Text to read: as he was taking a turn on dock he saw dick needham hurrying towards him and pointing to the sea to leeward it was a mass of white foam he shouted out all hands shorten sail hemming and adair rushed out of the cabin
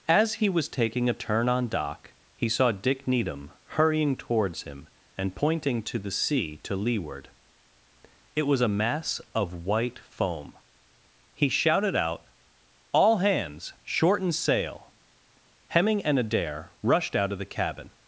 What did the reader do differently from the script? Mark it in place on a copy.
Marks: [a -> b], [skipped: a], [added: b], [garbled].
as he was taking a turn on dock he saw dick needham hurrying towards him and pointing to the sea to leeward it was a mass of white foam he shouted out all hands shorten sail hemming and adair rushed out of the cabin